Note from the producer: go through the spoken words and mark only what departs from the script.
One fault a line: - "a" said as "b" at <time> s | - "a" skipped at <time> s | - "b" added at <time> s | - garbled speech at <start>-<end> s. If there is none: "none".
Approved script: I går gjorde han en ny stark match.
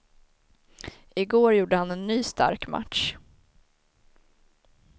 none